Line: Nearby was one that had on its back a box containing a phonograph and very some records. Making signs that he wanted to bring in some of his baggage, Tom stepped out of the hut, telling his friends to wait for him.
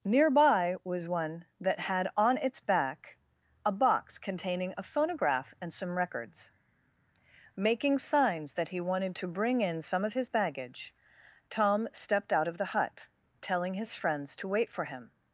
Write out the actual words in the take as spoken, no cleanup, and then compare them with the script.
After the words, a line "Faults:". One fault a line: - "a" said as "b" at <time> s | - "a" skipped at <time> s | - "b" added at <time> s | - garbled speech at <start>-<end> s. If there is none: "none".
Nearby was one that had on its back a box containing a phonograph and some records. Making signs that he wanted to bring in some of his baggage, Tom stepped out of the hut, telling his friends to wait for him.
Faults:
- "very" skipped at 5.7 s